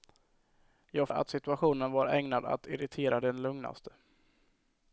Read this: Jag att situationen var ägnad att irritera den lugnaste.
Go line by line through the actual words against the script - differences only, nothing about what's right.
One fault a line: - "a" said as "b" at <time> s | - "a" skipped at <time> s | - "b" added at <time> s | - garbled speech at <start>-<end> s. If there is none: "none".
none